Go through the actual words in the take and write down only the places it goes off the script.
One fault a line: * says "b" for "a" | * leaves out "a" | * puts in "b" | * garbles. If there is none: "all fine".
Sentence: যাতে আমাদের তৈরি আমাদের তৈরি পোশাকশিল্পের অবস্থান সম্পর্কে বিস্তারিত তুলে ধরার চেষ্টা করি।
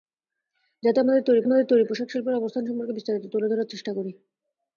all fine